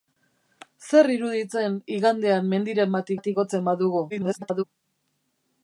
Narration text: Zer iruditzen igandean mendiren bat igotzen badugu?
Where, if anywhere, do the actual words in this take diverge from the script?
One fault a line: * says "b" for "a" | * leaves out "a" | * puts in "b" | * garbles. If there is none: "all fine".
* puts in "bat"
* garbles